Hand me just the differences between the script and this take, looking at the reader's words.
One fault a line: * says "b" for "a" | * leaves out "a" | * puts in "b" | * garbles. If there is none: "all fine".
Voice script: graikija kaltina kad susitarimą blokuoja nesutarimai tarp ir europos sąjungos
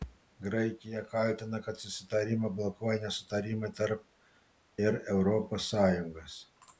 all fine